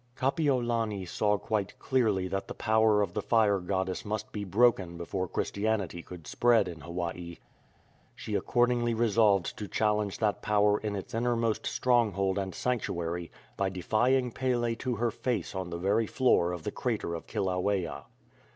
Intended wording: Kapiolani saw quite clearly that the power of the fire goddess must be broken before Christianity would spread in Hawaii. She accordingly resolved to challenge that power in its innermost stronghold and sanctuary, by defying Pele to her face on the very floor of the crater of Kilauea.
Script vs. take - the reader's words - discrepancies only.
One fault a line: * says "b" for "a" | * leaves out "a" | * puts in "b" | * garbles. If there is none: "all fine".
* says "could" for "would"